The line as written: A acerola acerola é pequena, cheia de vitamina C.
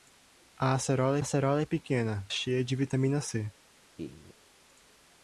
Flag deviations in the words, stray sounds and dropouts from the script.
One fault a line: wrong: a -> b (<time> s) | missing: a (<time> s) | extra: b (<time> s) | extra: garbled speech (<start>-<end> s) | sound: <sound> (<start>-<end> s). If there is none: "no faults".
sound: laugh (4.0-4.3 s)